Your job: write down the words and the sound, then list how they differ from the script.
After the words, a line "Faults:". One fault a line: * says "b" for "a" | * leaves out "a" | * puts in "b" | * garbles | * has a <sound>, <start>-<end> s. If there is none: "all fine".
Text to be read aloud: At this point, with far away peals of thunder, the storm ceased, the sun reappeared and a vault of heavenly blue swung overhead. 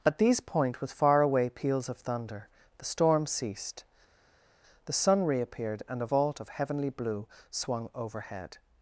At these point, with far away peals of thunder, the storm ceased, the sun reappeared and a vault of heavenly blue swung overhead.
Faults:
* says "these" for "this"